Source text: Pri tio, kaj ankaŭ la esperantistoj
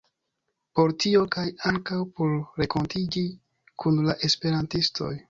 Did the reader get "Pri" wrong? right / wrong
wrong